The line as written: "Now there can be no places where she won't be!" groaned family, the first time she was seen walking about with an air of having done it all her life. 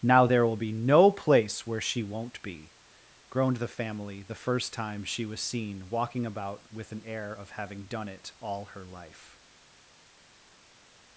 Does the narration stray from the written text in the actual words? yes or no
yes